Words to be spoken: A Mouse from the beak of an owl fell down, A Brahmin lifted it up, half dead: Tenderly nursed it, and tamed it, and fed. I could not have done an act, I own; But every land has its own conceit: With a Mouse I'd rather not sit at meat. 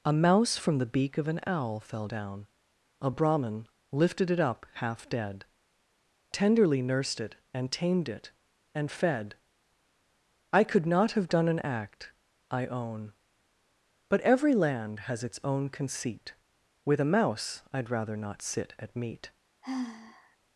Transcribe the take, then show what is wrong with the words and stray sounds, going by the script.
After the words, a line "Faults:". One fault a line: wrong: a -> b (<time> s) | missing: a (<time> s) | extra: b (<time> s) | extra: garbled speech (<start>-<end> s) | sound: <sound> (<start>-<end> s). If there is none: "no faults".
A Mouse from the beak of an owl fell down, A Brahmin lifted it up, half dead: Tenderly nursed it, and tamed it, and fed. I could not have done an act, I own; But every land has its own conceit: With a Mouse I'd rather not sit at meat.
Faults:
sound: sigh (19.6-20.4 s)